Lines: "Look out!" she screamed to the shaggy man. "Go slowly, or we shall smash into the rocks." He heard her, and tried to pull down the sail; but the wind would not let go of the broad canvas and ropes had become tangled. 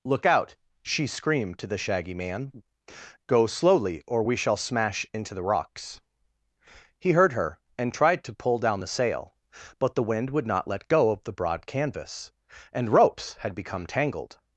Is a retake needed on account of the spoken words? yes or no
no